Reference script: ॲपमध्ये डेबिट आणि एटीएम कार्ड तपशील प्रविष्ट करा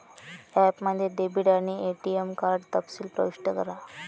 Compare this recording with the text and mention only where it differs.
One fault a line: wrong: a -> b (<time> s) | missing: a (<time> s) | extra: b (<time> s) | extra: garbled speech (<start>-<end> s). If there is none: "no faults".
no faults